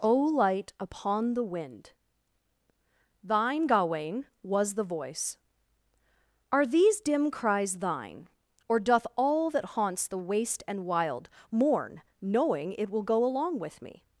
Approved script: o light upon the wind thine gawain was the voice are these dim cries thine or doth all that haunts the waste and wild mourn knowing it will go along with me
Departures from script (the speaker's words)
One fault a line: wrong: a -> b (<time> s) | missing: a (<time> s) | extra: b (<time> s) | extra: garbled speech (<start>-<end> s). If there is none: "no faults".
no faults